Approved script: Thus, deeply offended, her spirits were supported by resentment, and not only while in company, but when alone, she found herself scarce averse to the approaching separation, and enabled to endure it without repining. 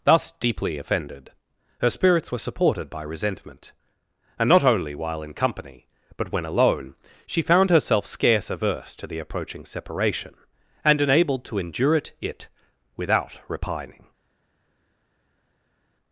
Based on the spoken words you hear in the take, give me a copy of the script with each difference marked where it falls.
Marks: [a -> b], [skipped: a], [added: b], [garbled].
Thus, deeply offended, her spirits were supported by resentment, and not only while in company, but when alone, she found herself scarce averse to the approaching separation, and enabled to endure it [added: it] without repining.